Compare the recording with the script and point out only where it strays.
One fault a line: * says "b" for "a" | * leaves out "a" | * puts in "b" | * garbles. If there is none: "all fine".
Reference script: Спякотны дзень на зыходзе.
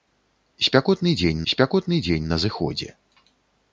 * puts in "спякотны дзень"